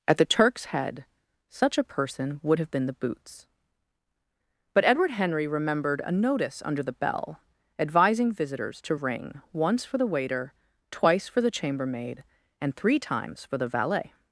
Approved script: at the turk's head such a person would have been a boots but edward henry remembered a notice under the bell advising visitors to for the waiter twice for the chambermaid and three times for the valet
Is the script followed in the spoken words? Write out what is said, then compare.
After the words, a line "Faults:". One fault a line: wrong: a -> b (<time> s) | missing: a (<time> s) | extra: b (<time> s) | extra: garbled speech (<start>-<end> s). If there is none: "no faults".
at the turk's head such a person would have been the boots but edward henry remembered a notice under the bell advising visitors to ring once for the waiter twice for the chambermaid and three times for the valet
Faults:
wrong: a -> the (2.9 s)
extra: ring once (8.9 s)